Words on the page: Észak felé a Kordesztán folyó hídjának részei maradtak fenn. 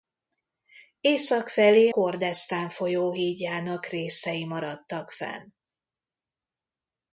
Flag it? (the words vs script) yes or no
yes